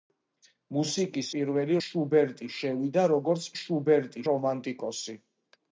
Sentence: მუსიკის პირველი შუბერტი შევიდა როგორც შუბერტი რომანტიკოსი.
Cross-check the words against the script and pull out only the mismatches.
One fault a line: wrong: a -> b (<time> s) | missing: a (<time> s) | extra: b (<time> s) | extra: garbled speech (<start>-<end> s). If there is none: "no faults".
no faults